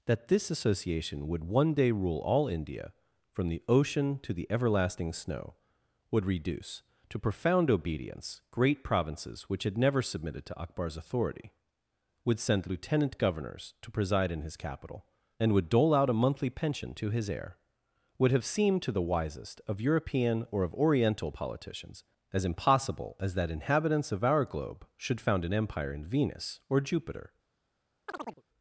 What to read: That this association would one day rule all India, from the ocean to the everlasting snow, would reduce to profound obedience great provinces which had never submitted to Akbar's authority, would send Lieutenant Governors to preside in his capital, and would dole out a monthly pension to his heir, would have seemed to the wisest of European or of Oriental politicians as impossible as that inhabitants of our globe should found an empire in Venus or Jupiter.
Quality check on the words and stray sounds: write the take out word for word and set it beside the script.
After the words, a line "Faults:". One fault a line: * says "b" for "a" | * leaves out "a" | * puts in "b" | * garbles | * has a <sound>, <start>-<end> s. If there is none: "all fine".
That this association would one day rule all India, from the ocean to the everlasting snow, would reduce to profound obedience great provinces which had never submitted to Akbar's authority, would send Lieutenant Governors to preside in his capital, and would dole out a monthly pension to his heir, would have seemed to the wisest of European or of Oriental politicians as impossible as that inhabitants of our globe should found an empire in Venus or Jupiter.
Faults:
* has a chirp, 28.1-28.4 s